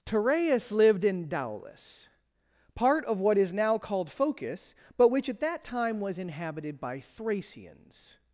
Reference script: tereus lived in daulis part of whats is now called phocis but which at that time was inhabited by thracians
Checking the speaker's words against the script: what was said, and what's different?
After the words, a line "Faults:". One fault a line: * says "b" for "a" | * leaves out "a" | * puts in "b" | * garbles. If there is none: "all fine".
tereus lived in daulis part of what is now called phocis but which at that time was inhabited by thracians
Faults:
* says "what" for "whats"